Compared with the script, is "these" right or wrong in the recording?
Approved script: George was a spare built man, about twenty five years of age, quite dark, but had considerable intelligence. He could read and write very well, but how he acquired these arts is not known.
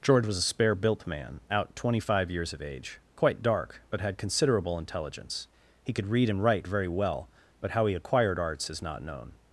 wrong